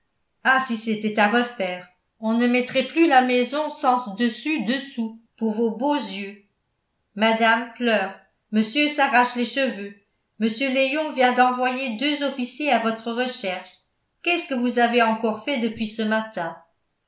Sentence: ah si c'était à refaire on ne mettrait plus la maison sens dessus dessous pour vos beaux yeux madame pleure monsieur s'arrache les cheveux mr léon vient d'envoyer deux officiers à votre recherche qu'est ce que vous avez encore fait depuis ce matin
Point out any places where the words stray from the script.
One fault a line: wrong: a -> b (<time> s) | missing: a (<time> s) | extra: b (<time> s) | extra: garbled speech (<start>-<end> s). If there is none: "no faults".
no faults